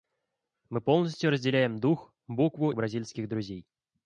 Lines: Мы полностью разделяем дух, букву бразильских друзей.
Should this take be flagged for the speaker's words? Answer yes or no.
no